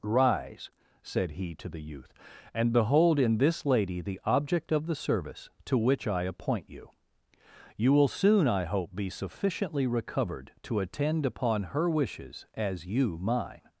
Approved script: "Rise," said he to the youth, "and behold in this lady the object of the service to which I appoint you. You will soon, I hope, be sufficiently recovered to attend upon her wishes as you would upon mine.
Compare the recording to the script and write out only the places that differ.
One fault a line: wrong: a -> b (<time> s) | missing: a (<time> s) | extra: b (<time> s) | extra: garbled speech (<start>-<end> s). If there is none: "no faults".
missing: would upon (13.2 s)